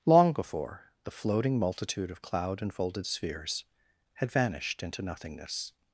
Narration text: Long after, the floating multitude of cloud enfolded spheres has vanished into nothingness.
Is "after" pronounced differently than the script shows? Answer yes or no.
yes